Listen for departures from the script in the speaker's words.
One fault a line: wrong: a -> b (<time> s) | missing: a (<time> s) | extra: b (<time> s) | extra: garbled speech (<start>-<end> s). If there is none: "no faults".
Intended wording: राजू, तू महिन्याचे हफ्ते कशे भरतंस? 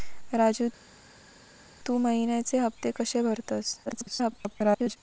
extra: garbled speech (3.9-5.0 s)